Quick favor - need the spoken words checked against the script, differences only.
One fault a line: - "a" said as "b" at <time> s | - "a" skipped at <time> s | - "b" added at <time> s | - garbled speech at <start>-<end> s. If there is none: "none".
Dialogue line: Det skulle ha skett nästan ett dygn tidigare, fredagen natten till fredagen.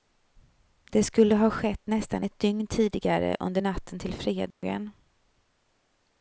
- "fredagen" said as "under" at 3.4 s